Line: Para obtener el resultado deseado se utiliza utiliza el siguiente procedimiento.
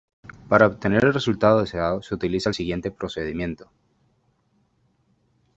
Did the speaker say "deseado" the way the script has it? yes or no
yes